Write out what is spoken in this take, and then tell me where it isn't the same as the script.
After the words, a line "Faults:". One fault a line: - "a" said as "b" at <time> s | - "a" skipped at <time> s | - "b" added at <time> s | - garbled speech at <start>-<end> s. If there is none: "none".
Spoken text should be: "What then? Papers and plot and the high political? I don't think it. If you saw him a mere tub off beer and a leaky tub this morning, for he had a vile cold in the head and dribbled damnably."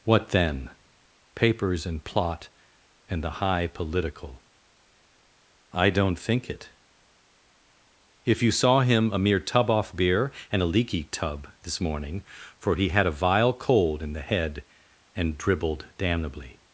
"What then? Papers and plot and the high political? I don't think it. If you saw him a mere tub off beer and a leaky tub this morning, for he had a vile cold in the head and dribbled damnably."
Faults:
none